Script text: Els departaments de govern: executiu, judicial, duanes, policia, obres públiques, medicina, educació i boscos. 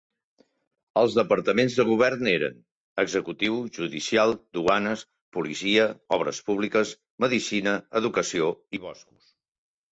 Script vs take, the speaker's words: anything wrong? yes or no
yes